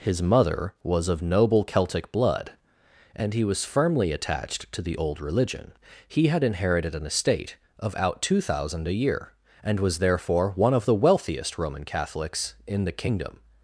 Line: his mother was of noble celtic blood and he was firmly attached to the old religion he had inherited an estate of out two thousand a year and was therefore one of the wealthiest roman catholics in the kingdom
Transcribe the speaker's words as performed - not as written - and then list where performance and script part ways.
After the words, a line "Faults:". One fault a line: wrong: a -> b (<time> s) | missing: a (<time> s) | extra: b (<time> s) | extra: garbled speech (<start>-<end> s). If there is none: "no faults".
his mother was of noble celtic blood and he was firmly attached to the old religion he had inherited an estate of out two thousand a year and was therefore one of the wealthiest roman catholics in the kingdom
Faults:
no faults